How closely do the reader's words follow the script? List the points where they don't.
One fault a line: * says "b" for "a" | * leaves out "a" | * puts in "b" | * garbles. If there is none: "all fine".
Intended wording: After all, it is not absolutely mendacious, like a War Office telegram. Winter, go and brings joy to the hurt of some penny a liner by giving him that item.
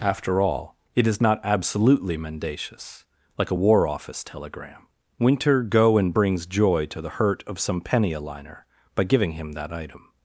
all fine